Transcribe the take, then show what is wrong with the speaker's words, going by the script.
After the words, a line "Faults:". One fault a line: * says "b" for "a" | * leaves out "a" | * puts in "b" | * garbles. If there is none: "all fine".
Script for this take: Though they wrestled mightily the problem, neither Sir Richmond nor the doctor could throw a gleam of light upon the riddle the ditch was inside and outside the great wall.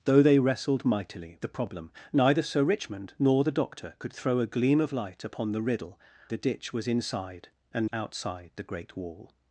Though they wrestled mightily the problem, neither Sir Richmond nor the doctor could throw a gleam of light upon the riddle the ditch was inside and outside the great wall.
Faults:
all fine